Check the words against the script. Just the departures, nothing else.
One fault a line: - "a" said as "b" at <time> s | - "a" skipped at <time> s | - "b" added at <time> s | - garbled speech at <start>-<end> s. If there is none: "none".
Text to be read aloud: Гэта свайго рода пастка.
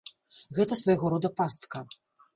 none